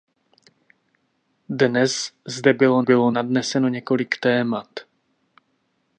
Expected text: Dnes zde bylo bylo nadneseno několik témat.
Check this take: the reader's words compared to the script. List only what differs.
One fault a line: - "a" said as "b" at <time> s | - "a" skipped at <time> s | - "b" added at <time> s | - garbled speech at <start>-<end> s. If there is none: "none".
none